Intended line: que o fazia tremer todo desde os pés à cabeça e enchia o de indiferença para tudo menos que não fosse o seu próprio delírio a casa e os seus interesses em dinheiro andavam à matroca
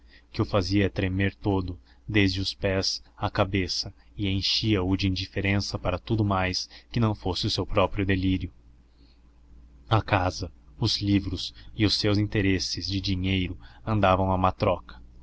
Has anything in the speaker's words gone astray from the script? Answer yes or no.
yes